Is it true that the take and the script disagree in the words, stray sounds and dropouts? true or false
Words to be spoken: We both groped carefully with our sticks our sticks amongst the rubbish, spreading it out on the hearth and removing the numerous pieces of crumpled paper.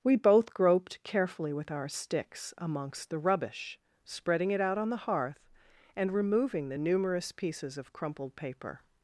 true